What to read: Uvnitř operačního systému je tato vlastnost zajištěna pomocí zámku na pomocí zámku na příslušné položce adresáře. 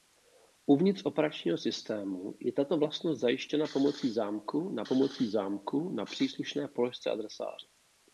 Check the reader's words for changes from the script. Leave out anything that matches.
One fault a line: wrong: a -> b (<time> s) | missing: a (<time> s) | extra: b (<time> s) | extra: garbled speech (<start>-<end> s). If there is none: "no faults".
no faults